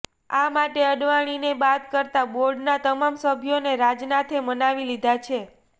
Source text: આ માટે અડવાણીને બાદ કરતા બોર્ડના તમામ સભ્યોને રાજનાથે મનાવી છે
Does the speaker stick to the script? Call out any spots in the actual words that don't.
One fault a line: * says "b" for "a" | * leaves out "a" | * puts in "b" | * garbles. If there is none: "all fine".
* puts in "લીધા"